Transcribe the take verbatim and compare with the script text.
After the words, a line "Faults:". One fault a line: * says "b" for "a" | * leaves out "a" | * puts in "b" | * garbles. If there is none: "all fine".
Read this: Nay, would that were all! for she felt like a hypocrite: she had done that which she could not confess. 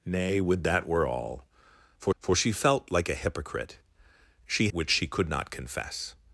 Nay, would that were all! for for she felt like a hypocrite: she which she could not confess.
Faults:
* puts in "for"
* leaves out "had done that"